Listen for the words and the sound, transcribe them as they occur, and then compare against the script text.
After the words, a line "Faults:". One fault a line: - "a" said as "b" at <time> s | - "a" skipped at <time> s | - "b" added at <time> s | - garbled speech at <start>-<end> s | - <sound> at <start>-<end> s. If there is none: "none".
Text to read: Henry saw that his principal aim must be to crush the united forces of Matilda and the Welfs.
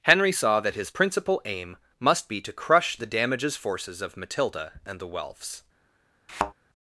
Henry saw that his principal aim must be to crush the damages forces of Matilda and the Welfs.
Faults:
- "united" said as "damages" at 3.1 s
- thud at 6.3-6.5 s